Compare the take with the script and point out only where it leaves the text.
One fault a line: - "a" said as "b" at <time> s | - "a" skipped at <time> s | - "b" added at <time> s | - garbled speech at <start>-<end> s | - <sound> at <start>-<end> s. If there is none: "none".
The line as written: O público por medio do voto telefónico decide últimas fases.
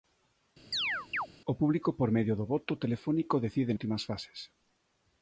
- chirp at 0.7-1.3 s